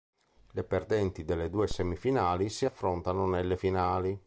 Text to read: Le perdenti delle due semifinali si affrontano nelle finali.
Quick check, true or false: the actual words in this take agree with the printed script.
true